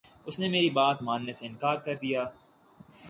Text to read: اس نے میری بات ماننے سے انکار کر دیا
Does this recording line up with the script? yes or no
yes